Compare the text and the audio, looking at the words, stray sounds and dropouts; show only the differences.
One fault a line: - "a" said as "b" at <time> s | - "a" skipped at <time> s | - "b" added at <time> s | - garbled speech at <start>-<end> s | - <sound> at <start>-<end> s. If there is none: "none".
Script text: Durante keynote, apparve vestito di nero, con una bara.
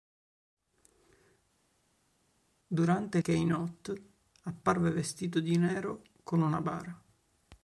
none